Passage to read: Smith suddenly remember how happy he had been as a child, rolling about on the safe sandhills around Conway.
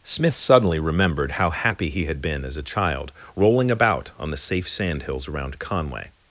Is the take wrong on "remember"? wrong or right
wrong